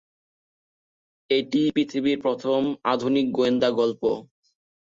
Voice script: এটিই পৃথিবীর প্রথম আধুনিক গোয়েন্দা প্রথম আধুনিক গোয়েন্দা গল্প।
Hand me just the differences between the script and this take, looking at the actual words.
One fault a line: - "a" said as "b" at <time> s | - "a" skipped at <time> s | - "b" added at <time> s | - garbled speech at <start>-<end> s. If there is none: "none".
- "প্রথম আধুনিক গোয়েন্দা" skipped at 3.7 s